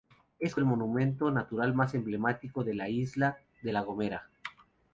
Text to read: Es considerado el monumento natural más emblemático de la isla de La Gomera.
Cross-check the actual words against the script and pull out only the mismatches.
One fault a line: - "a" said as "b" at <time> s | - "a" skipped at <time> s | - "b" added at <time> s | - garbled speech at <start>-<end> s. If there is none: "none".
- "considerado" skipped at 0.6 s